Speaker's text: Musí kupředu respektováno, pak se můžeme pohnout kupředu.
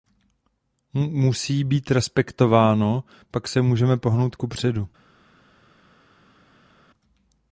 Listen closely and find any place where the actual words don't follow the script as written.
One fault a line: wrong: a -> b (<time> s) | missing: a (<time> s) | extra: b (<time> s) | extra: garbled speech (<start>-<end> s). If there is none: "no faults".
wrong: kupředu -> být (1.6 s)